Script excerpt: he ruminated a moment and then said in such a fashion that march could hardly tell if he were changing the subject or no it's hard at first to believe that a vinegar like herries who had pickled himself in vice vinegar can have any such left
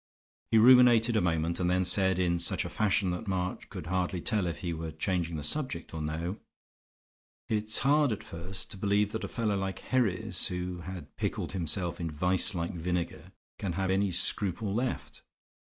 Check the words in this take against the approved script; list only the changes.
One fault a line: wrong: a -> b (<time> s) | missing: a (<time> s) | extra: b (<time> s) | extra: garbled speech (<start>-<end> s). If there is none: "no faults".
wrong: vinegar -> fellow (9.3 s)
extra: like (12.5 s)
wrong: such -> scruple (14.1 s)